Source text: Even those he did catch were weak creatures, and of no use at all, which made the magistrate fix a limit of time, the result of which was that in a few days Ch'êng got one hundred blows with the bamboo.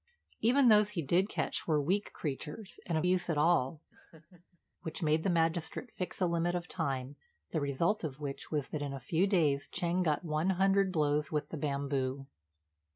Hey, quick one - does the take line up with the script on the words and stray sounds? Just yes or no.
no